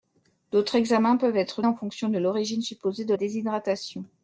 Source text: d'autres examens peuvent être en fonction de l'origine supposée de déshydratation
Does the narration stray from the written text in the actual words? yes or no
no